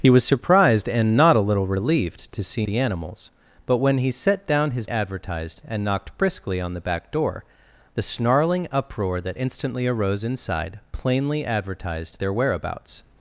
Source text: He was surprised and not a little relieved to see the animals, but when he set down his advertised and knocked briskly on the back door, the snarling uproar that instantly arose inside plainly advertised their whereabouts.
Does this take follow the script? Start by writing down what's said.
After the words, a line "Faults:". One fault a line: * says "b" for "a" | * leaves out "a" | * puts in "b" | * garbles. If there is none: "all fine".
He was surprised and not a little relieved to see the animals, but when he set down his advertised and knocked briskly on the back door, the snarling uproar that instantly arose inside plainly advertised their whereabouts.
Faults:
all fine